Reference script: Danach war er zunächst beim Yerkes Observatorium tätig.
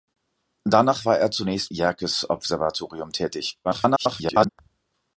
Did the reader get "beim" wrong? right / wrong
wrong